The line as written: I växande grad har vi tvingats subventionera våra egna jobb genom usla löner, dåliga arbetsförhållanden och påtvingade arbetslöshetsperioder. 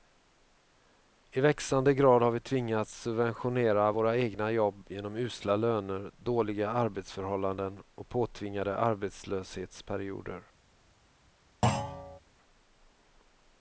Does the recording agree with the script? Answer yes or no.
yes